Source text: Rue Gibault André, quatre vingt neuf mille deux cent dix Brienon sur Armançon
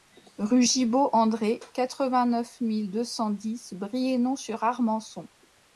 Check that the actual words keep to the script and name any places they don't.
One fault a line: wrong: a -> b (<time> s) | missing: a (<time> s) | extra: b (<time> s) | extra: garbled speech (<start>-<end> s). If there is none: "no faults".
no faults